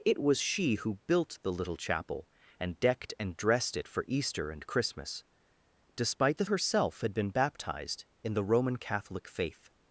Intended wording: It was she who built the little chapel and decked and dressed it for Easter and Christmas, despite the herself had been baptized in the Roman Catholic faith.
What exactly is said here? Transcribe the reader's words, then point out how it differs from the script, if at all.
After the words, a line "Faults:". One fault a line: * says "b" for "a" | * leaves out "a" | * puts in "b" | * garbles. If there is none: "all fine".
It was she who built the little chapel and decked and dressed it for Easter and Christmas, despite the herself had been baptized in the Roman Catholic faith.
Faults:
all fine